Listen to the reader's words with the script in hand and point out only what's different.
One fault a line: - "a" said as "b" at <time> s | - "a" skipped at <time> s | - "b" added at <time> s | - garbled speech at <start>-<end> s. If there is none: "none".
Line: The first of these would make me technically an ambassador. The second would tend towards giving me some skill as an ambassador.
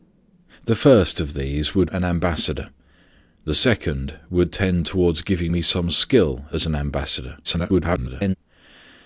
- "make me technically" skipped at 1.9 s
- garbled speech at 7.4-8.4 s